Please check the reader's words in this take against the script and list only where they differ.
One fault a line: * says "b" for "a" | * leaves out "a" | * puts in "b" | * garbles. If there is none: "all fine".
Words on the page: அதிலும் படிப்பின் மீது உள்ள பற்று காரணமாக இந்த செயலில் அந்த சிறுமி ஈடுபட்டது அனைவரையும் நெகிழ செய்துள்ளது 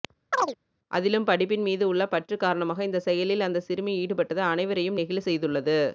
all fine